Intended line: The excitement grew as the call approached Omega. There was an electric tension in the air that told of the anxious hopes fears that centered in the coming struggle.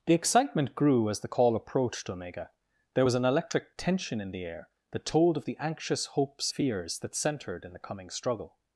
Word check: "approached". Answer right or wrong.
right